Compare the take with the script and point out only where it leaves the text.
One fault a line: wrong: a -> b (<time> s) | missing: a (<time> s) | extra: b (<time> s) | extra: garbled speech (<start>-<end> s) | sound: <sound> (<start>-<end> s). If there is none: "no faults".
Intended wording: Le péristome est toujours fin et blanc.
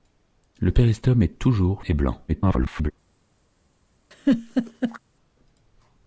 missing: fin (1.9 s)
extra: garbled speech (2.3-2.9 s)
sound: laugh (4.1-5.0 s)